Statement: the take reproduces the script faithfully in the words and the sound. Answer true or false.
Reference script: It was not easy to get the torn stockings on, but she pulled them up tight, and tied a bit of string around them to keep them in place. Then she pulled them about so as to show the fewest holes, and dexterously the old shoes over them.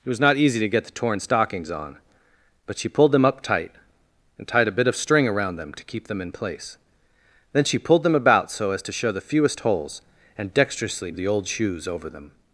true